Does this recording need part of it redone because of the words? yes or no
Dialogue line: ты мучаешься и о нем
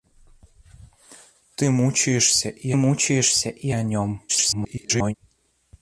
yes